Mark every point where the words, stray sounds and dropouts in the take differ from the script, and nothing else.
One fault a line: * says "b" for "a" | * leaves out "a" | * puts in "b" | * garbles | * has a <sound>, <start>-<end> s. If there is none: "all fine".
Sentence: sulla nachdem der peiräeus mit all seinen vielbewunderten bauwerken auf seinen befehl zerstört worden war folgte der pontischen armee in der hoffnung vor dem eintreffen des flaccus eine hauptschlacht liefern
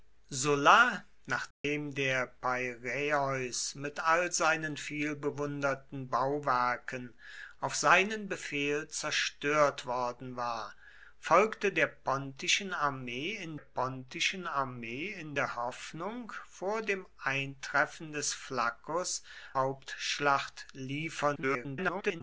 * has a dropout, 1.5-1.6 s
* puts in "pontischen armee in"
* leaves out "eine"
* garbles